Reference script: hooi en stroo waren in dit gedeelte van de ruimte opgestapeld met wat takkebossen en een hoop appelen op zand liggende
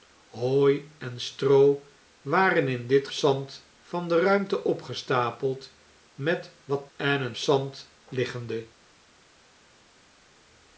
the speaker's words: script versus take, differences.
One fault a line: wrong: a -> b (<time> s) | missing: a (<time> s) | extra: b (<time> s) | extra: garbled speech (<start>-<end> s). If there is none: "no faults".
wrong: gedeelte -> zand (3.1 s)
missing: takkebossen (6.9 s)
missing: hoop appelen op (7.4 s)